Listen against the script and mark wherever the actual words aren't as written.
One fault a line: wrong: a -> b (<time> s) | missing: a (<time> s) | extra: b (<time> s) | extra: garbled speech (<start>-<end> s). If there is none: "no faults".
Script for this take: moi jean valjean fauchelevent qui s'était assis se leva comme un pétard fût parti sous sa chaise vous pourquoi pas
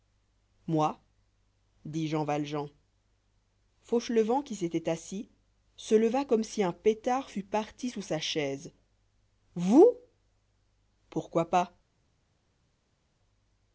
extra: dit (1.9 s)
extra: si (6.4 s)